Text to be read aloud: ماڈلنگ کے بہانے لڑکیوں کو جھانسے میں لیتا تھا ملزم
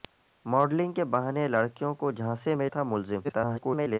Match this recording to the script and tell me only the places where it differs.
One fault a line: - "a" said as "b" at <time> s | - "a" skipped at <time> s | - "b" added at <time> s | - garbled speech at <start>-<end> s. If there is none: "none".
- "لیتا" skipped at 2.7 s
- garbled speech at 3.2-4.0 s